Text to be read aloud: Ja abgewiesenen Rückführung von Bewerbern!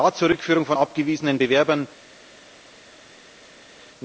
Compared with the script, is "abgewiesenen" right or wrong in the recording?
wrong